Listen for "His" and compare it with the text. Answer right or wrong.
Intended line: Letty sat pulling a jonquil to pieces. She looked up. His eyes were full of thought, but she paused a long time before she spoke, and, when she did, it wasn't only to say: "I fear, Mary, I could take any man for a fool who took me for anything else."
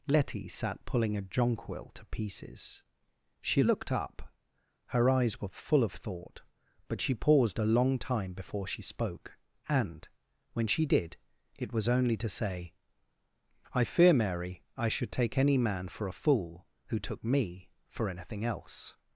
wrong